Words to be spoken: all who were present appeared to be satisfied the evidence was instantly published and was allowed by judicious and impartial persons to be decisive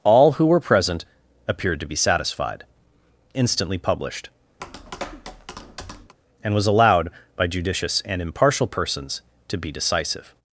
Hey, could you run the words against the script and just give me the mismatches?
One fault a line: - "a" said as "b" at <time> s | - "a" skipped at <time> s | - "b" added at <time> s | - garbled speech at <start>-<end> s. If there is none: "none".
- "the evidence was" skipped at 2.6 s